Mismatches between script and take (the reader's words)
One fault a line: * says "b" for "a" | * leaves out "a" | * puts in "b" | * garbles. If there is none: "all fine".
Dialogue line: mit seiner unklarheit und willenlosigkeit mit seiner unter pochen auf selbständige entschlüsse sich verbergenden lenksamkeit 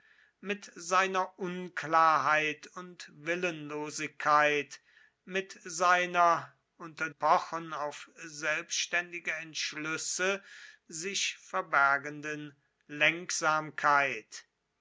all fine